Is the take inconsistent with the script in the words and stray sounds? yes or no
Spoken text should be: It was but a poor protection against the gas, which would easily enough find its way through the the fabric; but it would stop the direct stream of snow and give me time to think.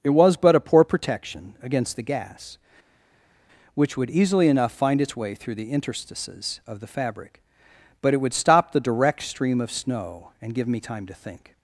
yes